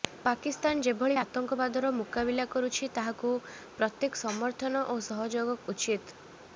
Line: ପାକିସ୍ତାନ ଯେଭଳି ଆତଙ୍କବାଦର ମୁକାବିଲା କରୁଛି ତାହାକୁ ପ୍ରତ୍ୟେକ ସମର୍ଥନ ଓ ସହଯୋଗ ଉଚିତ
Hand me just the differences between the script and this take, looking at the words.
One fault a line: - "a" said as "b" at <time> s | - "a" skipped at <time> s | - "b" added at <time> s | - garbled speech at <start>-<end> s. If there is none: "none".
none